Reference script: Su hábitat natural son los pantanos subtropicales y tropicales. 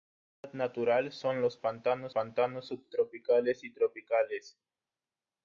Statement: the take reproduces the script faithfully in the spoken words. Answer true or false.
false